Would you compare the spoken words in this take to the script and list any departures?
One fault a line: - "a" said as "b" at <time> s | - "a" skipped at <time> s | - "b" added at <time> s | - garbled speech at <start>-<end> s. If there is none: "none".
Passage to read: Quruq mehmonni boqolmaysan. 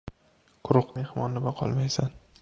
none